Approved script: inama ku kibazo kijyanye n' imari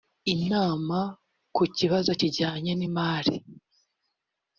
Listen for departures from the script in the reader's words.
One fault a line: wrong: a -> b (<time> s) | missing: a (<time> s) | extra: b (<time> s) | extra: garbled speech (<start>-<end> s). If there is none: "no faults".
no faults